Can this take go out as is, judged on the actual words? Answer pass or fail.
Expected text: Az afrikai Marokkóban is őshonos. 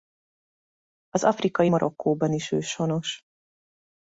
pass